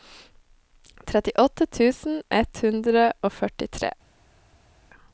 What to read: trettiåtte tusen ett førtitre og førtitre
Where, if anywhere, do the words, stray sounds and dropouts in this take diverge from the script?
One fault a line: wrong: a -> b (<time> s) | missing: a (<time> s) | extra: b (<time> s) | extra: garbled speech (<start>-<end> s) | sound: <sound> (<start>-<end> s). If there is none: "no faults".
wrong: førtitre -> hundre (2.6 s)